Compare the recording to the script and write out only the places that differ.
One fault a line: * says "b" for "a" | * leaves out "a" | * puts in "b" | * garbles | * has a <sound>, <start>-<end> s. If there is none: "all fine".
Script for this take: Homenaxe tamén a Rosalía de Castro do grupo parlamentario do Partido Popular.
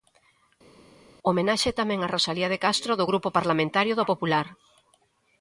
* leaves out "Partido"